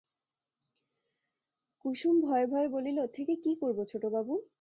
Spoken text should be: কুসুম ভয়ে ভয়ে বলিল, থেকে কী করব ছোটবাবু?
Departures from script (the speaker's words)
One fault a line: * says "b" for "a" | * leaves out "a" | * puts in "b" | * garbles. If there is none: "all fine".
all fine